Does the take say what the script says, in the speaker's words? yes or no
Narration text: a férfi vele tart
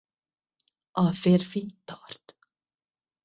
no